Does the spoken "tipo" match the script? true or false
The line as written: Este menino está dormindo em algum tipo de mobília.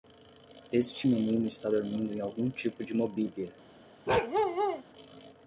true